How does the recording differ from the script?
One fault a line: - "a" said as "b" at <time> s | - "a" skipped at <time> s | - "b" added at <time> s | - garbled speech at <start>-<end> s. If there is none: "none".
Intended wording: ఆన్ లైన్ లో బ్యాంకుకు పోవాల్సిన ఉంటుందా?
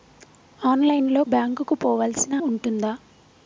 none